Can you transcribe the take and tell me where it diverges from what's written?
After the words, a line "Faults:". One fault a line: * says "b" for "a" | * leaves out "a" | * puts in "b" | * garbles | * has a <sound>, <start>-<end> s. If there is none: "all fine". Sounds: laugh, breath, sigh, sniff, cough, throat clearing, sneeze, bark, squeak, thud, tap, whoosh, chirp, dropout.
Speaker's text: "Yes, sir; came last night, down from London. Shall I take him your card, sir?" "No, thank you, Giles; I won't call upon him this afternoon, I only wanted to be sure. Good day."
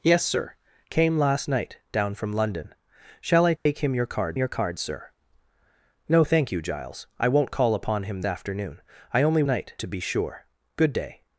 "Yes, sir; came last night, down from London. Shall I take him your card your card, sir?" "No, thank you, Giles; I won't call upon him afternoon, I only night to be sure. Good day."
Faults:
* has a dropout, 3.6-3.7 s
* puts in "your card"
* leaves out "this"
* says "night" for "wanted"